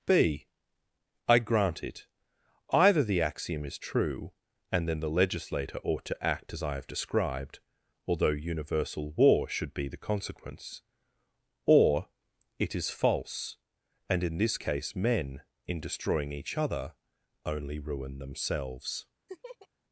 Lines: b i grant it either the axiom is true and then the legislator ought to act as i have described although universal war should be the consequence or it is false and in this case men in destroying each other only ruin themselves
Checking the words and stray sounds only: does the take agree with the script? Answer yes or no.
no